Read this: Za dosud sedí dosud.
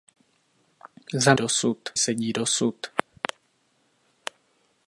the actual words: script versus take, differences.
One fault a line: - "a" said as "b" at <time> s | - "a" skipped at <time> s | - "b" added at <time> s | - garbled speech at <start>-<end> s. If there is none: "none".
none